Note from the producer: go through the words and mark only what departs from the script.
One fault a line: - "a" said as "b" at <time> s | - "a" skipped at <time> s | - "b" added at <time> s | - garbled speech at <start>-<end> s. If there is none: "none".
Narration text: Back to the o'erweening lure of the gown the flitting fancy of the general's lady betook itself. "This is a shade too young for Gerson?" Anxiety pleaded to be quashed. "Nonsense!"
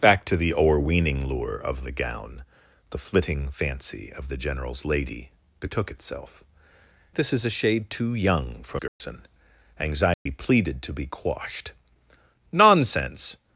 none